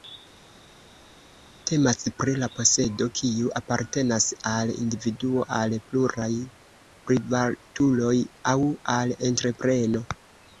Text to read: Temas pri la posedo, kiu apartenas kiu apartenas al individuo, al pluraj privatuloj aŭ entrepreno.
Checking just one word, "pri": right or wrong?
right